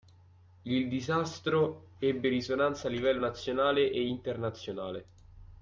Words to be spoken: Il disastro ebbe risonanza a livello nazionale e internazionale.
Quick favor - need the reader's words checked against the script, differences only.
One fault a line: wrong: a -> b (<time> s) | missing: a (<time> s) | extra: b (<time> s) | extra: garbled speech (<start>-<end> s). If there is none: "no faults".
no faults